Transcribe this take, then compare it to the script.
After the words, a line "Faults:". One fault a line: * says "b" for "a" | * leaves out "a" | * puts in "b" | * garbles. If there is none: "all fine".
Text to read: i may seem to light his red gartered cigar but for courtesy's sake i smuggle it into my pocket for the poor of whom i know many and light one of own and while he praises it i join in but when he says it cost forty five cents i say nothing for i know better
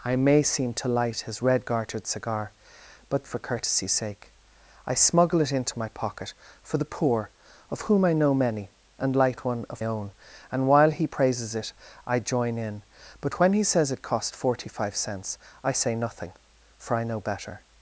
i may seem to light his red gartered cigar but for courtesy's sake i smuggle it into my pocket for the poor of whom i know many and light one of own and while he praises it i join in but when he says it cost forty five cents i say nothing for i know better
Faults:
all fine